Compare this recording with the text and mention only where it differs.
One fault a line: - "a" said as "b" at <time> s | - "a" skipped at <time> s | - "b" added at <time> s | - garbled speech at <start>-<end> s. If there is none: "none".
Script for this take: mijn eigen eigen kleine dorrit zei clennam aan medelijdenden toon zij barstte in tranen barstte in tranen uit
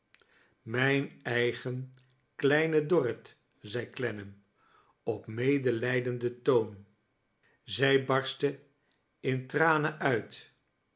- "eigen" skipped at 1.9 s
- "aan" said as "op" at 5.0 s
- "barstte in tranen" skipped at 10.0 s